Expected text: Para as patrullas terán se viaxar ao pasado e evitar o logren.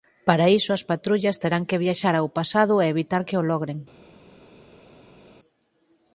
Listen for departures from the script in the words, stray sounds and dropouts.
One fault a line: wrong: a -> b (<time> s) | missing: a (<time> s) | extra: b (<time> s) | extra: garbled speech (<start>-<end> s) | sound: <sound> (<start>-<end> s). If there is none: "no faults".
extra: iso (0.6 s)
wrong: se -> que (1.7 s)
extra: que (3.3 s)